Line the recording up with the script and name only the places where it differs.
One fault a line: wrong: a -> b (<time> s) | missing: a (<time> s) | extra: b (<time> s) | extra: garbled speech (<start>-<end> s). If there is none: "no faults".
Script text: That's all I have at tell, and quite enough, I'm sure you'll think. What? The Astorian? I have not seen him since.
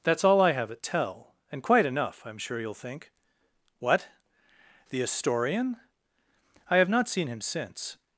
no faults